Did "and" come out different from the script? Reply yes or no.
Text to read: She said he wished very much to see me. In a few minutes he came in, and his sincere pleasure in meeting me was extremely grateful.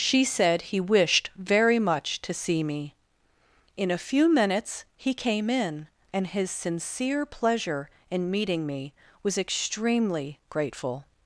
no